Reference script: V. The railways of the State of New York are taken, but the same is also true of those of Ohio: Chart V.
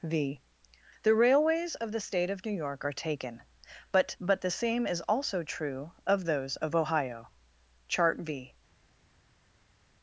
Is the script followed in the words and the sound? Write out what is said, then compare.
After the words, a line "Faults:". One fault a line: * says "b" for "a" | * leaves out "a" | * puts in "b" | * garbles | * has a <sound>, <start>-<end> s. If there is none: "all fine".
V. The railways of the State of New York are taken, but but the same is also true of those of Ohio: Chart V.
Faults:
* puts in "but"